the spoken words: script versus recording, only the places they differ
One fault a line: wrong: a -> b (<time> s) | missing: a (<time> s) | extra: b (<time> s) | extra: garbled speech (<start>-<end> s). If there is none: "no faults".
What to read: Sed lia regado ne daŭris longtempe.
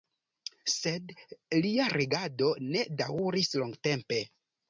no faults